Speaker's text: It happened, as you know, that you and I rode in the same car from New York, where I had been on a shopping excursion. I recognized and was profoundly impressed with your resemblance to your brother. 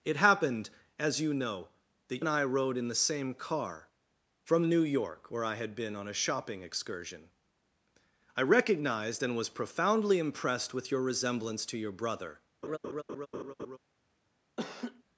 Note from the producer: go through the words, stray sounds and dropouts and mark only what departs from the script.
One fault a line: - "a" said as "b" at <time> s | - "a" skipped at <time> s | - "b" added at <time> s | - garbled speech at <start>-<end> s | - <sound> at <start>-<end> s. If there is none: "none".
- "you" skipped at 2.2 s
- laugh at 12.6-13.8 s
- laugh at 14.6-15.0 s